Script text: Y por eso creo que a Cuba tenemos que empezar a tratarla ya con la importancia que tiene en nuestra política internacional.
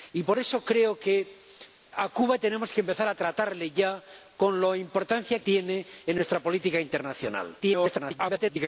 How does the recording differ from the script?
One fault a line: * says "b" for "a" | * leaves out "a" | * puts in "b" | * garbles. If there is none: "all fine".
* leaves out "que"
* garbles